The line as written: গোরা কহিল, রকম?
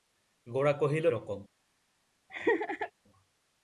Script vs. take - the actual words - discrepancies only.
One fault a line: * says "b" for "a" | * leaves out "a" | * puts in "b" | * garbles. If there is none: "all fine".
all fine